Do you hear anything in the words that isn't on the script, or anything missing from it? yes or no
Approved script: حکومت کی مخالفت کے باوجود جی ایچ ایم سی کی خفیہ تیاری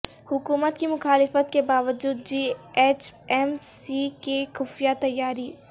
no